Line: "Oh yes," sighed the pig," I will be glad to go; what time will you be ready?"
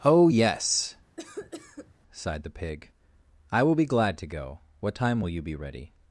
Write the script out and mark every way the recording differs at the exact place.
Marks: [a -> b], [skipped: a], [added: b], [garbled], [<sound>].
"Oh yes," [cough] sighed the pig," I will be glad to go; what time will you be ready?"